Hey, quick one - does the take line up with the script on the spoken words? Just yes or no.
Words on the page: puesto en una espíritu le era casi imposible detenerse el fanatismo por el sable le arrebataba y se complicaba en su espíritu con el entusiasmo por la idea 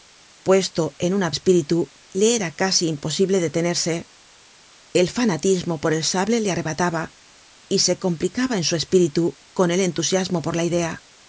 yes